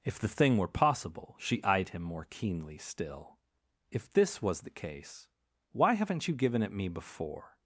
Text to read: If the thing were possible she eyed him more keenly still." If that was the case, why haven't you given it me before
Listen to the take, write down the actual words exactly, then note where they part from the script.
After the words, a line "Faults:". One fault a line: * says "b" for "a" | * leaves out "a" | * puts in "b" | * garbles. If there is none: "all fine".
If the thing were possible she eyed him more keenly still." If this was the case, why haven't you given it me before
Faults:
* says "this" for "that"